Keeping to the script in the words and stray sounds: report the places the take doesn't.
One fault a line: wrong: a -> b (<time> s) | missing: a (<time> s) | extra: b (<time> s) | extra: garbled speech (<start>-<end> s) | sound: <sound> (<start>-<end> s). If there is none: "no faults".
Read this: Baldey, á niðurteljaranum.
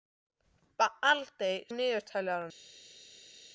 no faults